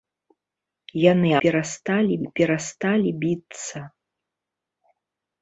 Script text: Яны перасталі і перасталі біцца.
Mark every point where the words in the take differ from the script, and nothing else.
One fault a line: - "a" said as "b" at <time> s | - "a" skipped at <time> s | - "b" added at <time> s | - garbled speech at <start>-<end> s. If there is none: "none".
none